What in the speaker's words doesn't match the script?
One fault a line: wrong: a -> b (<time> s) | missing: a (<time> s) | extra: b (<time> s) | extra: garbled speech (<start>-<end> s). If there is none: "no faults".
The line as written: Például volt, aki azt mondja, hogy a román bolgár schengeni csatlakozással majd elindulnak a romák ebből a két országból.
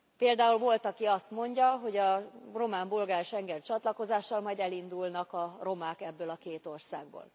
no faults